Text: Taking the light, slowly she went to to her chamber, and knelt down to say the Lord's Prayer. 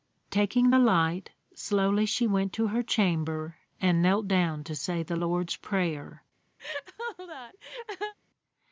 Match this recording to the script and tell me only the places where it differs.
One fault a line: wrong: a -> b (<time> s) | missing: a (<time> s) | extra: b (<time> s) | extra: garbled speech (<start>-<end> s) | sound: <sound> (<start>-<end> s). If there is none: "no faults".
missing: to (2.7 s)
sound: laugh (6.6-8.1 s)